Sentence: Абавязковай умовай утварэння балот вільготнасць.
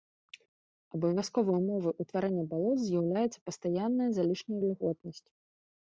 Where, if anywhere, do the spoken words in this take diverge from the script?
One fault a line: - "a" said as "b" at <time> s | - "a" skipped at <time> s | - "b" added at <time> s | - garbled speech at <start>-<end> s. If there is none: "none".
- "з'яўляецца пастаянная залішняя" added at 2.9 s